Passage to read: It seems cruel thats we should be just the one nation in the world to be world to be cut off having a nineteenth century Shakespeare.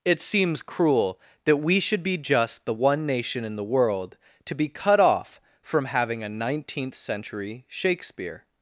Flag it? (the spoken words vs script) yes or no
yes